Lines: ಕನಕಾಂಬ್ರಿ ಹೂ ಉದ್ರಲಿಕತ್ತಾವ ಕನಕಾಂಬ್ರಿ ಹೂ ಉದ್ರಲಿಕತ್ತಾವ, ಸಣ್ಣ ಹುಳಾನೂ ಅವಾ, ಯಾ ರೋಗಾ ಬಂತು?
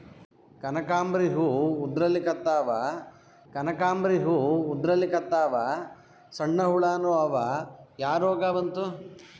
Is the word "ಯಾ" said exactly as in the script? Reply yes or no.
yes